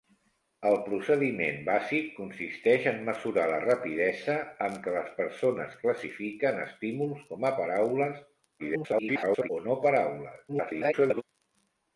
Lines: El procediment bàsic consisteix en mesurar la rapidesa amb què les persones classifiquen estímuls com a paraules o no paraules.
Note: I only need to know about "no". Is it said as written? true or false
true